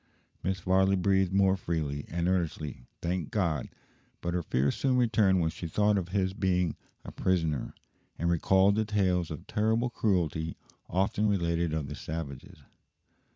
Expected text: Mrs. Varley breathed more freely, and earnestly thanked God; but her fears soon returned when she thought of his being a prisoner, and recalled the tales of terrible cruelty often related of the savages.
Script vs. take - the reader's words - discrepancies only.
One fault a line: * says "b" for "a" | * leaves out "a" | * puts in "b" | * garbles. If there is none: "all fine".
all fine